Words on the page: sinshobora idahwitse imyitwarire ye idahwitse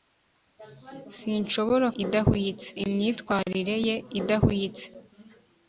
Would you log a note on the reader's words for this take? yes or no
no